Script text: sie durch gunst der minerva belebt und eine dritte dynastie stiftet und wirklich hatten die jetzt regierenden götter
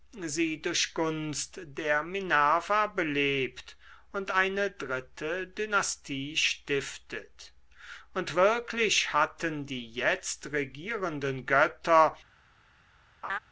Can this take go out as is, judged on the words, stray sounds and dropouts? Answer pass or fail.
fail